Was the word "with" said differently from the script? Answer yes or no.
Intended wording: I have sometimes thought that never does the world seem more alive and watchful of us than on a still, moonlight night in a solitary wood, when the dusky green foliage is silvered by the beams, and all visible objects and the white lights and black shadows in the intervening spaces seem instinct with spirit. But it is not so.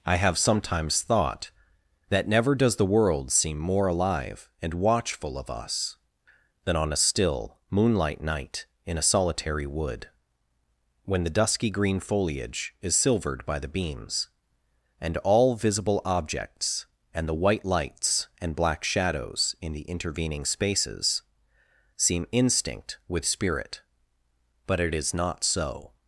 no